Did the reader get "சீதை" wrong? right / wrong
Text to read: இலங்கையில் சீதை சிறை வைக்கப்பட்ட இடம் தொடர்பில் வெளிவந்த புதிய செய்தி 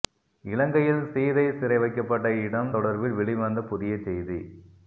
right